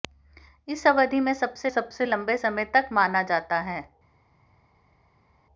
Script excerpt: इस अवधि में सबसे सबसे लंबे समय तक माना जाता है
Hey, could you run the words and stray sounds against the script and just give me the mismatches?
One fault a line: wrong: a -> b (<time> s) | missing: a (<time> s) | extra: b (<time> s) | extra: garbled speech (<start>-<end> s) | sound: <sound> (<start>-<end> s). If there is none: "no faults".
no faults